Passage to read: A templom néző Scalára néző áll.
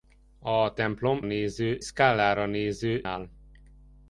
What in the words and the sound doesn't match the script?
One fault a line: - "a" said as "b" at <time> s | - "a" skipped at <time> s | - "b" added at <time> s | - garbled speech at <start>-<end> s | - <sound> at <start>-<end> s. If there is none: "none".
none